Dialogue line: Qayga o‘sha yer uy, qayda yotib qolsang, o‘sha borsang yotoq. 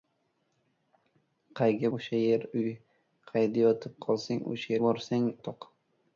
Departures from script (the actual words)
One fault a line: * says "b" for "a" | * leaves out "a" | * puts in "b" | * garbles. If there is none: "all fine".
all fine